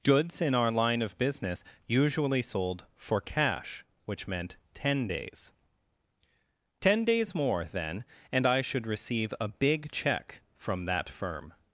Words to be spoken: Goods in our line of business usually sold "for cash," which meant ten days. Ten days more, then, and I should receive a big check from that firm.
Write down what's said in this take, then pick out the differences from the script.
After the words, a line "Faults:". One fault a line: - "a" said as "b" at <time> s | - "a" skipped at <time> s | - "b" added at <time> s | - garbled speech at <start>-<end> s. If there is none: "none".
Goods in our line of business usually sold "for cash," which meant ten days. Ten days more, then, and I should receive a big check from that firm.
Faults:
none